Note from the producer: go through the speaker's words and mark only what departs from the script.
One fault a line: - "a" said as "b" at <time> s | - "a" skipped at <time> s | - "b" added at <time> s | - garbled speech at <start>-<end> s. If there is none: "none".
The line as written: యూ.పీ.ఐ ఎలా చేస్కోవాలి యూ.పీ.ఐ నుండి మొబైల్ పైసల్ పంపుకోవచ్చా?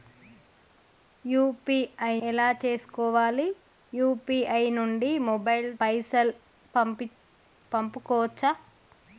none